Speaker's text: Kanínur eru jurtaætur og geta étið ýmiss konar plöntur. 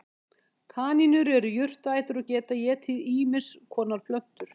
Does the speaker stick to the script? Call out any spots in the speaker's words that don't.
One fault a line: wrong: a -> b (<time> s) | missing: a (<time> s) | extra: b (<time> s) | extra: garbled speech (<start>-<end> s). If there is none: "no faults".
no faults